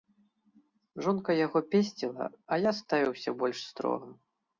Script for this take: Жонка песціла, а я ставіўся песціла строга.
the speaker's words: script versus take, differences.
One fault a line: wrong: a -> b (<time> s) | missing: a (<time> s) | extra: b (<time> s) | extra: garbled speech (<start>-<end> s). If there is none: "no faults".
extra: яго (1.4 s)
wrong: песціла -> больш (3.4 s)